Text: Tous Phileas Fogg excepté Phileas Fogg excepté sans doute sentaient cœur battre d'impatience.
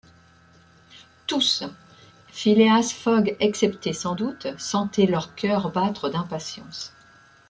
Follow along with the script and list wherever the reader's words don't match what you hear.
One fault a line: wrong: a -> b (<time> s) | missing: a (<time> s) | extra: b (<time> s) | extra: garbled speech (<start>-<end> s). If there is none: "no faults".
missing: Phileas Fogg excepté (3.9 s)
extra: leur (5.0 s)